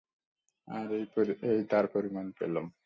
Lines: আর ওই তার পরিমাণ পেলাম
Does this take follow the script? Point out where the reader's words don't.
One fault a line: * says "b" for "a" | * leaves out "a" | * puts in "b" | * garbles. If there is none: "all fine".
* says "এই" for "ওই"